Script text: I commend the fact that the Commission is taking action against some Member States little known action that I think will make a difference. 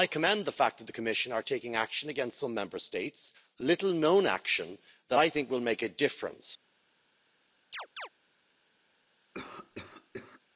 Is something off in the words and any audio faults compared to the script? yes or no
yes